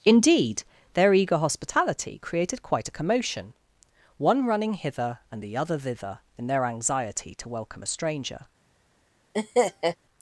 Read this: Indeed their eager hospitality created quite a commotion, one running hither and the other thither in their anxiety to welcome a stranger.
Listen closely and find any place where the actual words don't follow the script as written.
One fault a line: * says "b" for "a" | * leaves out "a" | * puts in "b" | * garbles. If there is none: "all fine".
all fine